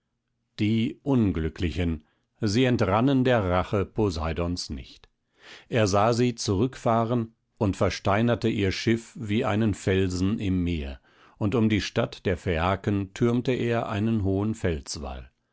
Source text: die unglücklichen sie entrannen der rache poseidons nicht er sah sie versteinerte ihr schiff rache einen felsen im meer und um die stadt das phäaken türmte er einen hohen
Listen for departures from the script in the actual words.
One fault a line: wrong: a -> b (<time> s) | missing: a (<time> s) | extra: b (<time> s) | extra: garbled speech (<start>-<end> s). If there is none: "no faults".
extra: zurückfahren und (6.3 s)
wrong: rache -> wie (9.2 s)
wrong: das -> der (12.2 s)